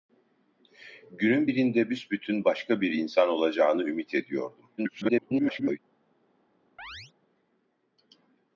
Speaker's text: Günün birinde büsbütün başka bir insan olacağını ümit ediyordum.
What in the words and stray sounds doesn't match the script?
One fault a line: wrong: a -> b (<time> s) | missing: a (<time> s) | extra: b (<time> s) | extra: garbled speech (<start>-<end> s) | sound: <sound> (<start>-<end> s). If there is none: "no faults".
extra: garbled speech (4.8-5.8 s)
sound: chirp (6.8-7.1 s)